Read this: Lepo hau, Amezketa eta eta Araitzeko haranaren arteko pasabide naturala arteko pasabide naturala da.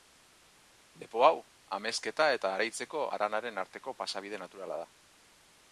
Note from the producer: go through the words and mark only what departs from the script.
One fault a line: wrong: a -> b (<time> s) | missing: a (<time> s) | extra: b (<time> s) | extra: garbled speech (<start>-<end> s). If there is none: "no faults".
missing: eta (2.5 s)
missing: arteko pasabide naturala (4.8 s)